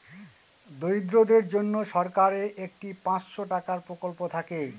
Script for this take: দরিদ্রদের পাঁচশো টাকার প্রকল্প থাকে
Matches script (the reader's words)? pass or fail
fail